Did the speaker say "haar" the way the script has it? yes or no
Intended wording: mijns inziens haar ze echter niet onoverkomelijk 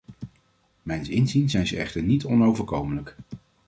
no